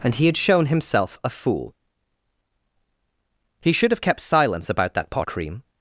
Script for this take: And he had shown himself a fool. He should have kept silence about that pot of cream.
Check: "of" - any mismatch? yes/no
yes